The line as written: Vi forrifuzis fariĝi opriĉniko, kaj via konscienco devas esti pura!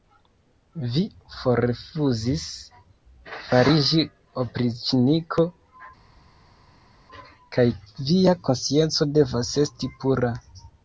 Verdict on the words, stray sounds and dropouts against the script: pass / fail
pass